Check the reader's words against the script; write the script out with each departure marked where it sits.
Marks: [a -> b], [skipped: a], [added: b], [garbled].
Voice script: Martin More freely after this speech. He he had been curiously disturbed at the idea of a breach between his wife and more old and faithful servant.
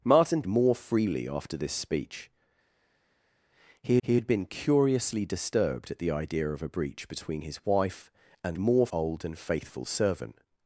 Martin More freely after this speech. He he had been curiously disturbed at the idea of a breach between his wife and more old and faithful servant.